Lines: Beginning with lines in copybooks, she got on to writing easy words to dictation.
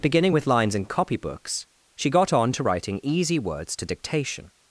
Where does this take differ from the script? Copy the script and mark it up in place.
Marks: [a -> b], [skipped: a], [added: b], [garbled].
Beginning with lines in copybooks, she got on to writing easy words to dictation.